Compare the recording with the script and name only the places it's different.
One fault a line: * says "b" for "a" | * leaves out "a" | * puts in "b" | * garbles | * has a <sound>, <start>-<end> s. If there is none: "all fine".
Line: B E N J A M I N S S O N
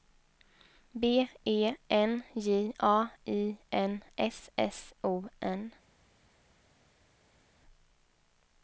* leaves out "M"